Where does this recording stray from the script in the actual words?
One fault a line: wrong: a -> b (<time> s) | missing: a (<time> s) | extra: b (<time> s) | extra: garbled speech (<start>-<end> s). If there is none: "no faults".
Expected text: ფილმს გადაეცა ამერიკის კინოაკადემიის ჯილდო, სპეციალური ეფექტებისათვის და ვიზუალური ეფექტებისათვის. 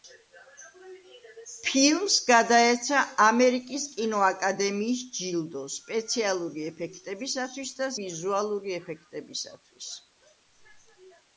no faults